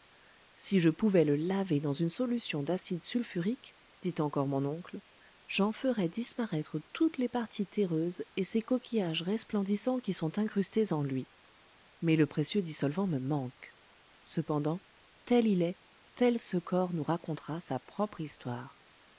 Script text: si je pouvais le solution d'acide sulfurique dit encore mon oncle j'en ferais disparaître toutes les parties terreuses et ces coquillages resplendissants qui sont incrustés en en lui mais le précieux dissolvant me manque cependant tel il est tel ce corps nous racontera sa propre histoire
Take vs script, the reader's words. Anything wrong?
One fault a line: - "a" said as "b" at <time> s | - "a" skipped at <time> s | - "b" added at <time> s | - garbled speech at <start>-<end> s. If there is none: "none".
- "laver dans une" added at 1.4 s
- "en" skipped at 11.0 s